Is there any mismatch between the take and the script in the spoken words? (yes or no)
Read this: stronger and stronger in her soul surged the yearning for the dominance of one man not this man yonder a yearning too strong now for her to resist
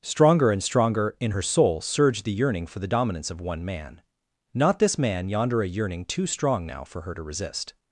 no